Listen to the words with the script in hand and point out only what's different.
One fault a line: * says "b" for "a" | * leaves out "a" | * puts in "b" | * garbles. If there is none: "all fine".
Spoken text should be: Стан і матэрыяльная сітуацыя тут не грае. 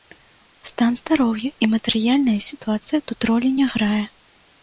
* puts in "здароўя"
* puts in "ролі"